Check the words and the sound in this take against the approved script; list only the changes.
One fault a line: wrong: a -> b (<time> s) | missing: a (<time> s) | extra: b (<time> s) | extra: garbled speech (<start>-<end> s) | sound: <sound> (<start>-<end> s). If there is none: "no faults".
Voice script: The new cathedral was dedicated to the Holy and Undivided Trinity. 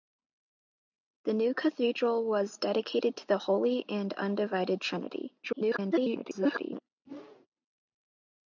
extra: garbled speech (5.4-6.8 s)
sound: whoosh (7.0-7.5 s)